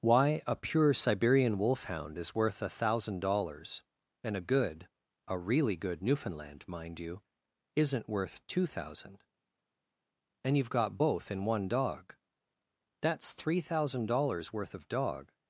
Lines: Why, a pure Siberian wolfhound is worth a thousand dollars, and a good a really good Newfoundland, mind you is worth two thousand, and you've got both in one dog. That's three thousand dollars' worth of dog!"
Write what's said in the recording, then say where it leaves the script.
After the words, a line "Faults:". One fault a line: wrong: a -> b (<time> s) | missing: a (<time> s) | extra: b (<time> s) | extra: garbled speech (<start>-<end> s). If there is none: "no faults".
Why, a pure Siberian wolfhound is worth a thousand dollars, and a good a really good Newfoundland, mind you isn't worth two thousand, and you've got both in one dog. That's three thousand dollars' worth of dog!"
Faults:
wrong: is -> isn't (7.8 s)